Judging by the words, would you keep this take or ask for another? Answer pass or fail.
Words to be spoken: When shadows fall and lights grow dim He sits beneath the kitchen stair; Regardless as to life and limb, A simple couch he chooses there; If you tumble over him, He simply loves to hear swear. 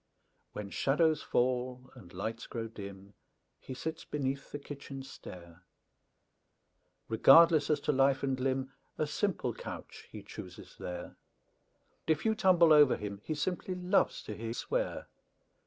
pass